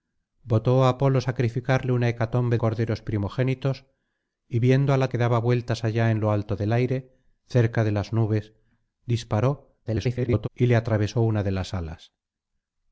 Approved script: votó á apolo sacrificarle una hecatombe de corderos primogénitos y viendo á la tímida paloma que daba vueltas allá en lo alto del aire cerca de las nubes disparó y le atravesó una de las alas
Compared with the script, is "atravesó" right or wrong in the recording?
right